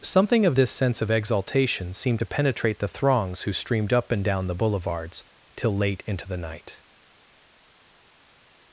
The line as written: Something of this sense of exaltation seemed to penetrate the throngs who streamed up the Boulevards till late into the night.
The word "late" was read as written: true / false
true